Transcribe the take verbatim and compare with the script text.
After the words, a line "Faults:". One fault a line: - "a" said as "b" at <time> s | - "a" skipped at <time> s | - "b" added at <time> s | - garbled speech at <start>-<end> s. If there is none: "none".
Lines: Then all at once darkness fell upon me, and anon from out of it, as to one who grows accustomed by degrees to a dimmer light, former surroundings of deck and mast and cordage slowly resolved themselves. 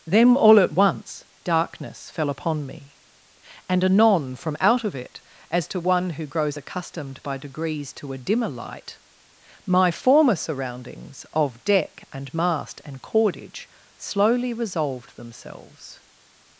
Then all at once darkness fell upon me, and anon from out of it, as to one who grows accustomed by degrees to a dimmer light, my former surroundings of deck and mast and cordage slowly resolved themselves.
Faults:
- "my" added at 9.6 s